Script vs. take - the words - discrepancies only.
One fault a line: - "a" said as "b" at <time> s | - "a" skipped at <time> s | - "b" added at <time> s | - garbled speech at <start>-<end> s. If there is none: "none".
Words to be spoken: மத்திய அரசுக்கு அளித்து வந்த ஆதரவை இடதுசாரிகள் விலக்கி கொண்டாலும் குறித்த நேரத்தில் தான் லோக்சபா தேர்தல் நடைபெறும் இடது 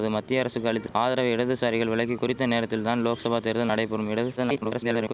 - "வந்த" skipped at 0.9 s
- "கொண்டாலும்" skipped at 2.2 s
- garbled speech at 4.4-5.1 s